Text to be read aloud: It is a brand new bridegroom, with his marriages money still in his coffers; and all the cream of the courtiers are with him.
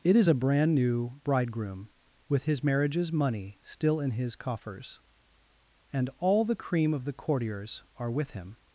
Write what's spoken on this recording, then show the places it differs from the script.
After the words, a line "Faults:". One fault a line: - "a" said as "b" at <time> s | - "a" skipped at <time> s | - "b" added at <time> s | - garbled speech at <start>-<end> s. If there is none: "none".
It is a brand new bridegroom, with his marriages money still in his coffers; and all the cream of the courtiers are with him.
Faults:
none